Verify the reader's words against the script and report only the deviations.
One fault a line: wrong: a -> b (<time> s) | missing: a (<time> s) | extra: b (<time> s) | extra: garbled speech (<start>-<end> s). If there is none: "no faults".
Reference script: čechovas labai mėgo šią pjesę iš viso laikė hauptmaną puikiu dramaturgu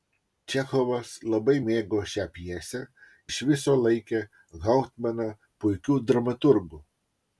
no faults